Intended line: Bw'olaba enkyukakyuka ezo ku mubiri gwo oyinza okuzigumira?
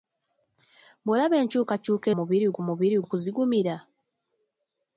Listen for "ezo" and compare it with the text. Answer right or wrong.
wrong